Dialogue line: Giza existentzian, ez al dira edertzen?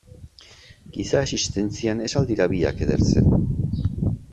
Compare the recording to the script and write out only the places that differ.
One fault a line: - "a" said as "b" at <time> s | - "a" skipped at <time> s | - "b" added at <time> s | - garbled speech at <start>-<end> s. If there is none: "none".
- "biak" added at 2.6 s